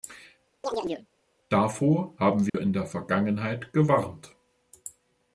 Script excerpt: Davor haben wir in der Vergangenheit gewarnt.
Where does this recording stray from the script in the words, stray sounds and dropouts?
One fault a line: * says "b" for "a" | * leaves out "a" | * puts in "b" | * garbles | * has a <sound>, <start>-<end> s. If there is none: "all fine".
* has a chirp, 0.6-1.1 s
* has a dropout, 2.5-2.5 s